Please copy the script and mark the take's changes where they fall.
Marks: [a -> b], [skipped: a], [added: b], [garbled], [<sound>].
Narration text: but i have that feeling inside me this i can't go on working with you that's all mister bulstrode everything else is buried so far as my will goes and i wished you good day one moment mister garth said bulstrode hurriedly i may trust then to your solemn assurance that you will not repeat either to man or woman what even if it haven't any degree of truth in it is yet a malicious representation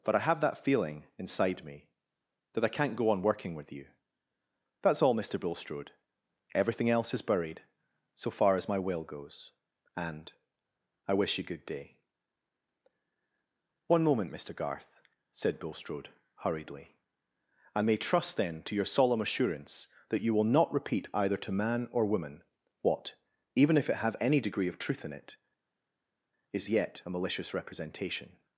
but i have that feeling inside me [this -> that] i can't go on working with you that's all mister bulstrode everything else is buried so far as my will goes and i [wished -> wish] you good day one moment mister garth said bulstrode hurriedly i may trust then to your solemn assurance that you will not repeat either to man or woman what even if it [haven't -> have] any degree of truth in it is yet a malicious representation